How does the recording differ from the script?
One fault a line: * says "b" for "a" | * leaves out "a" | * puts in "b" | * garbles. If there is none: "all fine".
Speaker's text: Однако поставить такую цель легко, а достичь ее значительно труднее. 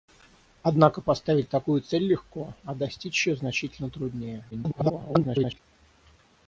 * garbles